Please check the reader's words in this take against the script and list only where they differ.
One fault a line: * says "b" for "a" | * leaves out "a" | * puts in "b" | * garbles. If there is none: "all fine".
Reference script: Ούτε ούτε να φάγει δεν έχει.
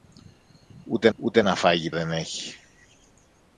all fine